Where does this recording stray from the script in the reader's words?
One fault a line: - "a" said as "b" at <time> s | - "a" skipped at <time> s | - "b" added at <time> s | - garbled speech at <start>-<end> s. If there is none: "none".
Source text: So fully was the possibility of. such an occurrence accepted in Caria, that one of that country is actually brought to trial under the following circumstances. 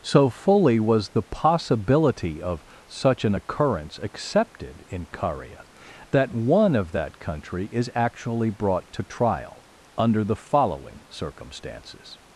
none